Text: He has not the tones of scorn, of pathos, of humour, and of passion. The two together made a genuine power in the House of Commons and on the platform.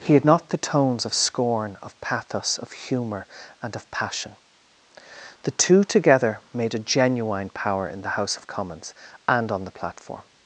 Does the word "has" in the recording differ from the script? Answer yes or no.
yes